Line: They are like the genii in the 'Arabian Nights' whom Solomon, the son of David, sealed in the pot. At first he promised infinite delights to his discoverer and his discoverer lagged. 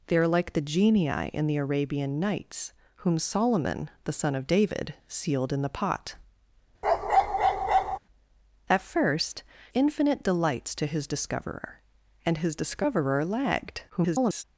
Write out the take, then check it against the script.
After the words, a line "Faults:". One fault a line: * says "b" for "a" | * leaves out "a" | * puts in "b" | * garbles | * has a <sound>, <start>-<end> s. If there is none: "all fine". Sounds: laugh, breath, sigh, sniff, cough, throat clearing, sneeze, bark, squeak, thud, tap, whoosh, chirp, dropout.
They are like the genii in the 'Arabian Nights' whom Solomon, the son of David, sealed in the pot. At first infinite delights to his discoverer and his discoverer lagged. [garbled]
Faults:
* has a bark, 6.8-8.0 s
* leaves out "he promised"
* garbles